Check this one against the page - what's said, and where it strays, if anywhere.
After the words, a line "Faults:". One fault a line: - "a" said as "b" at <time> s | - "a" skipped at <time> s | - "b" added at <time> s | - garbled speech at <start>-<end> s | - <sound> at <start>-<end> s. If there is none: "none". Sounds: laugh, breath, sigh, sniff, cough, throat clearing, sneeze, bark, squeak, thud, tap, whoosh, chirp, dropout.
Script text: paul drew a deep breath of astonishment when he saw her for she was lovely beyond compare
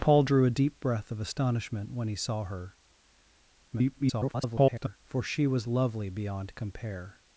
paul drew a deep breath of astonishment when he saw her [garbled] for she was lovely beyond compare
Faults:
- garbled speech at 3.7-5.0 s